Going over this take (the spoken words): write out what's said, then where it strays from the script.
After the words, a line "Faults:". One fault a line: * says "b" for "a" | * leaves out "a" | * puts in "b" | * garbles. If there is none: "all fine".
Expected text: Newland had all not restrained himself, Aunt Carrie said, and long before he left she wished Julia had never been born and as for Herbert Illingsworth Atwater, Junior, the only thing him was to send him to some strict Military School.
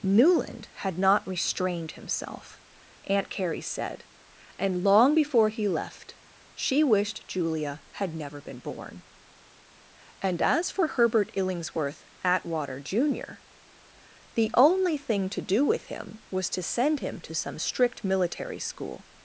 Newland had not restrained himself, Aunt Carrie said, and long before he left she wished Julia had never been born and as for Herbert Illingsworth Atwater, Junior, the only thing to do with him was to send him to some strict Military School.
Faults:
* leaves out "all"
* puts in "to do with"